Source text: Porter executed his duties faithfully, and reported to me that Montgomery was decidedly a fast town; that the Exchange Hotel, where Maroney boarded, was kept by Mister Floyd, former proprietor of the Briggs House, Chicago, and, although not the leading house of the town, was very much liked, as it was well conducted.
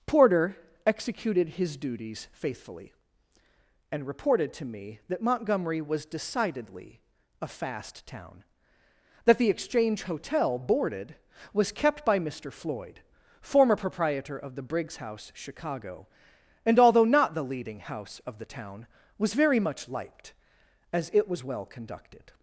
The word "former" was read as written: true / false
true